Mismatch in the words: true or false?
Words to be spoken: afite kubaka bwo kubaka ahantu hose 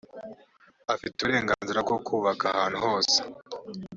true